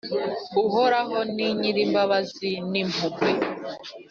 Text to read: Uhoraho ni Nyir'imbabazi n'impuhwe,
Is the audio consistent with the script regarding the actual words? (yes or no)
yes